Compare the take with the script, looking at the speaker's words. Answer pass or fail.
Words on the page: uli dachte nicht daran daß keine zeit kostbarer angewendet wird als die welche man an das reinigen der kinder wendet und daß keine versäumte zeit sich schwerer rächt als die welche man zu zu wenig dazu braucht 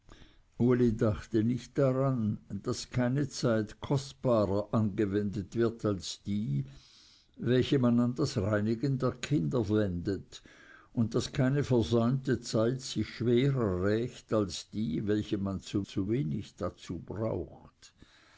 pass